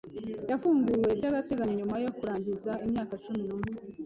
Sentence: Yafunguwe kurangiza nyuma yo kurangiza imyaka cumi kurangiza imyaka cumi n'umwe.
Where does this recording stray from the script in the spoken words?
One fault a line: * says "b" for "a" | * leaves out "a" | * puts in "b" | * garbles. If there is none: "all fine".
* says "by'agateganyo" for "kurangiza"
* leaves out "kurangiza imyaka cumi"